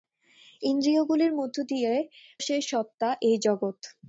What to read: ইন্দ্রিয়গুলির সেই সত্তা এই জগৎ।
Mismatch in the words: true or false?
false